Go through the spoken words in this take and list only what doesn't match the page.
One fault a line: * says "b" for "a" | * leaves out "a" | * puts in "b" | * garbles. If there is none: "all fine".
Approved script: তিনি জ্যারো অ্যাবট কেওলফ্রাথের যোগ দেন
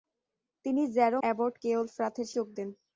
all fine